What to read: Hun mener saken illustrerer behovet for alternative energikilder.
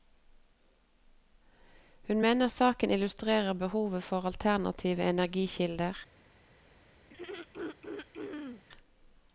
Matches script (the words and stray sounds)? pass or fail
fail